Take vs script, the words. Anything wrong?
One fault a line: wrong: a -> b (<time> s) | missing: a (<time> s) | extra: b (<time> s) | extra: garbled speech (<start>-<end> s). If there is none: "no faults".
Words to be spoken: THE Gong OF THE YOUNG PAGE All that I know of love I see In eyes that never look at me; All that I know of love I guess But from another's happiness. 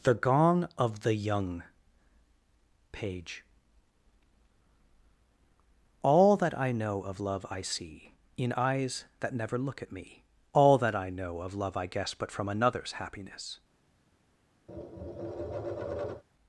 no faults